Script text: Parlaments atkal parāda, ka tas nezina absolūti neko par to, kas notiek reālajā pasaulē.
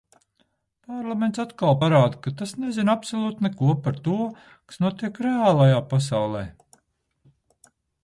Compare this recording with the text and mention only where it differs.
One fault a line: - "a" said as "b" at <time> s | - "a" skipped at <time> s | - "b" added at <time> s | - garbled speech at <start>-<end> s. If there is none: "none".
none